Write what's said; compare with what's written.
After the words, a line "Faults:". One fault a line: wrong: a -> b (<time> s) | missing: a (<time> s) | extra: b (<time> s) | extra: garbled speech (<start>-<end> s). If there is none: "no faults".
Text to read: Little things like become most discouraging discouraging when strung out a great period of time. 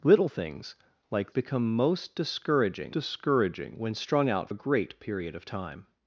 Little things like become most discouraging discouraging when strung out a great period of time.
Faults:
no faults